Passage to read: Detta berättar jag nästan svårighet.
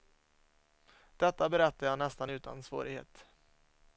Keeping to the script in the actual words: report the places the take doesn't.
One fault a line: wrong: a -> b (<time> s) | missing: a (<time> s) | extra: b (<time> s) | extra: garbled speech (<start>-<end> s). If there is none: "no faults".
extra: utan (2.3 s)